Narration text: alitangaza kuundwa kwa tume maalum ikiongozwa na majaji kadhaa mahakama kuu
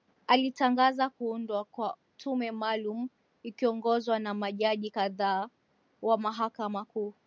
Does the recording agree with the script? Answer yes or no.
no